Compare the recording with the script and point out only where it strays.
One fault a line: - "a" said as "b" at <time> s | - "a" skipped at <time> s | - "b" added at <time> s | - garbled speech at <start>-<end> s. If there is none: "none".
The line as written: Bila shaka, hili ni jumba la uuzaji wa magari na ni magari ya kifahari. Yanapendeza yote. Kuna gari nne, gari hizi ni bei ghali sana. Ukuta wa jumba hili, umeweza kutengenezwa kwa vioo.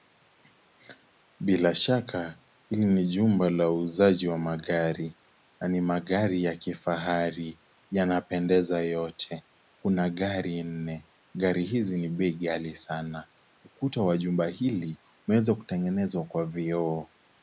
none